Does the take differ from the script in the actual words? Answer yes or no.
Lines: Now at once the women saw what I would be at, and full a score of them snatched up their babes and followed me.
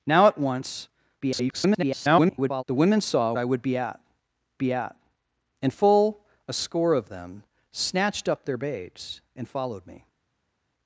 yes